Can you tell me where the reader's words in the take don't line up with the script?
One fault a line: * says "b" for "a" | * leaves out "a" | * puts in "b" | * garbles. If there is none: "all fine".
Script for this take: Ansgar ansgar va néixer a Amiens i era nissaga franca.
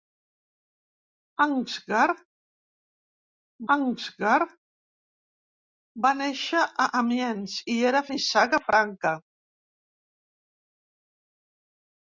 all fine